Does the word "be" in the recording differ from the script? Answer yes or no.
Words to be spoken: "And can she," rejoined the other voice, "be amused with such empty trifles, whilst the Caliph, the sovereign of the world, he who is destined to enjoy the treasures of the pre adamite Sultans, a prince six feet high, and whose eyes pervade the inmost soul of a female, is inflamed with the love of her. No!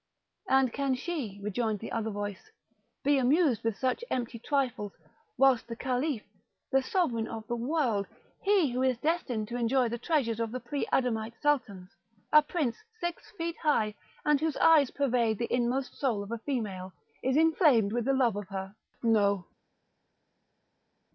no